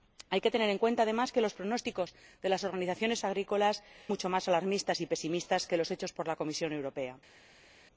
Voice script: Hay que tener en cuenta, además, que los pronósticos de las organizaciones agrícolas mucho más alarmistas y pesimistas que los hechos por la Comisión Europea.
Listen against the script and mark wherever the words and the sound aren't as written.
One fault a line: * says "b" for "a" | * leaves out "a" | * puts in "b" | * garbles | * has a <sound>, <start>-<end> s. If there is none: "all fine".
all fine